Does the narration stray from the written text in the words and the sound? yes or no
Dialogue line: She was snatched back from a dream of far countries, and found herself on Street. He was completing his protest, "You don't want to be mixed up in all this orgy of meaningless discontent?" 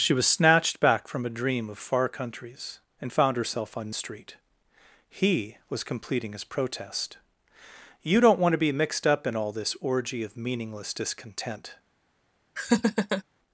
yes